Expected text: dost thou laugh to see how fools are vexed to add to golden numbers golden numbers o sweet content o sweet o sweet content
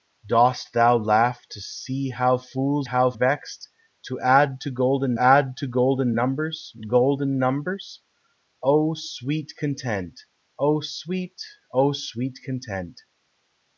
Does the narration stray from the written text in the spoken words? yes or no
yes